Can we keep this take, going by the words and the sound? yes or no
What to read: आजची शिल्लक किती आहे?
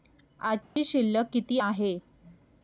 no